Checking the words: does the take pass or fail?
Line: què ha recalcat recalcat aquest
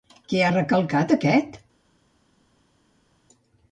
fail